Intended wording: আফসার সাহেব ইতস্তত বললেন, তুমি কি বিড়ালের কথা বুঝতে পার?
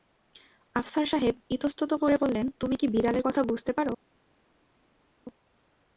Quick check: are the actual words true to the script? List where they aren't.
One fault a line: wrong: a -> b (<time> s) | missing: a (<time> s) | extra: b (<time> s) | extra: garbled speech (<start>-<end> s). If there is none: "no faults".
extra: করে (1.9 s)